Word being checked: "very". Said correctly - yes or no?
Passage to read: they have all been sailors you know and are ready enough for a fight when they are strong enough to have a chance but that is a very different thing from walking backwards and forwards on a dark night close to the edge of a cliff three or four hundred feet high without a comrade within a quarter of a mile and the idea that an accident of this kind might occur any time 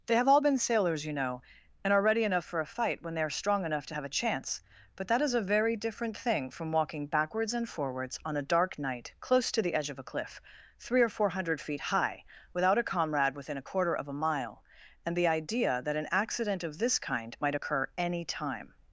yes